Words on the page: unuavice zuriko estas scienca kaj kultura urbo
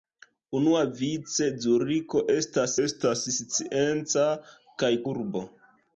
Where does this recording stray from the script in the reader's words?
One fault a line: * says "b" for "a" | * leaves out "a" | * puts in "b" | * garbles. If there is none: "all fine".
* puts in "estas"
* leaves out "kultura"